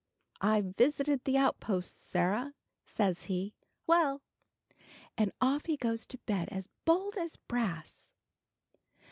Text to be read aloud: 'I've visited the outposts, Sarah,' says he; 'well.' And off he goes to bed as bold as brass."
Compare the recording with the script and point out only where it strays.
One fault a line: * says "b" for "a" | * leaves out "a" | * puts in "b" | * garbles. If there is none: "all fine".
all fine